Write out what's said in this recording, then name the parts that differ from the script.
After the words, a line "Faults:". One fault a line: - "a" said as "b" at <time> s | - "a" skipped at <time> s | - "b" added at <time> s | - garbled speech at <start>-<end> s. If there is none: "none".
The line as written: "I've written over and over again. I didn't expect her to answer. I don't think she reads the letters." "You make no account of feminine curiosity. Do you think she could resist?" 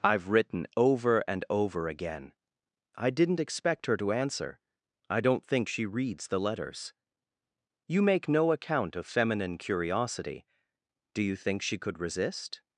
"I've written over and over again. I didn't expect her to answer. I don't think she reads the letters." "You make no account of feminine curiosity. Do you think she could resist?"
Faults:
none